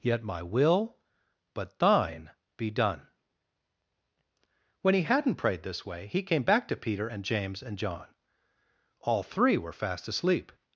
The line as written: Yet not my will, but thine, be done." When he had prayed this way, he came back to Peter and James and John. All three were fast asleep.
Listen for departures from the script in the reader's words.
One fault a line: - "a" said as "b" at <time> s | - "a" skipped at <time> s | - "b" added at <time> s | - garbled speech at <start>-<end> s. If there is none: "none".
- "not" skipped at 0.2 s
- "had" said as "hadn't" at 5.0 s